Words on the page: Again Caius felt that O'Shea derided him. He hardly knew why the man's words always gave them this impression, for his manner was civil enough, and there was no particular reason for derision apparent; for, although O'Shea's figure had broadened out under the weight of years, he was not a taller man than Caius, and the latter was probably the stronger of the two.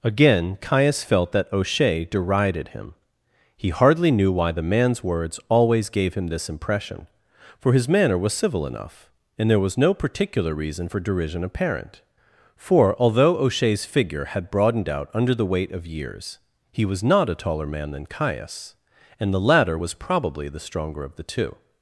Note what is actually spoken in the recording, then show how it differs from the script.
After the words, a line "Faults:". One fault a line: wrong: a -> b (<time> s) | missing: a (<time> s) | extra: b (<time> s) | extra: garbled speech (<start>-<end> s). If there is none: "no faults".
Again Caius felt that O'Shea derided him. He hardly knew why the man's words always gave him this impression, for his manner was civil enough, and there was no particular reason for derision apparent; for, although O'Shea's figure had broadened out under the weight of years, he was not a taller man than Caius, and the latter was probably the stronger of the two.
Faults:
wrong: them -> him (6.2 s)